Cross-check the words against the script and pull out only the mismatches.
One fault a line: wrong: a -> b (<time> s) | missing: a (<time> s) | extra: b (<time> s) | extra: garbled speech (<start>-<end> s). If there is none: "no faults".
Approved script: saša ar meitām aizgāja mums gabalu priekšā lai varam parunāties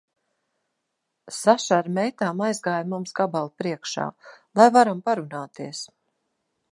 no faults